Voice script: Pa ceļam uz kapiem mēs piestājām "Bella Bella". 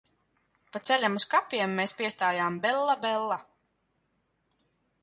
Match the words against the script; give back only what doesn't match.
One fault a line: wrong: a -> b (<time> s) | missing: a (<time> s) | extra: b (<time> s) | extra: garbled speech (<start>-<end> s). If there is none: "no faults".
no faults